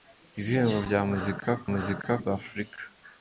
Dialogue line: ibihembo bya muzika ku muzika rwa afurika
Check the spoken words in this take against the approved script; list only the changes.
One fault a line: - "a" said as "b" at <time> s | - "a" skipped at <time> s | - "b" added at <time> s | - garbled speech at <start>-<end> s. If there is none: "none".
none